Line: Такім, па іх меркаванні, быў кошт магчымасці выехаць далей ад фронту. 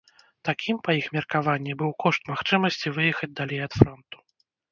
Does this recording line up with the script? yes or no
yes